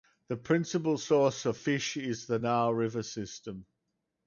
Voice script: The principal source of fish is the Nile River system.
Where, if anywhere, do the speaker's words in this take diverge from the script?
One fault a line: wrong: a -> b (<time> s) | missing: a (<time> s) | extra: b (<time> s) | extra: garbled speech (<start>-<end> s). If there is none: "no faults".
no faults